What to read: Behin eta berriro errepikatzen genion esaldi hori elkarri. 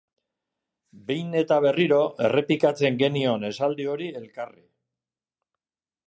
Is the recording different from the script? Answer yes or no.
no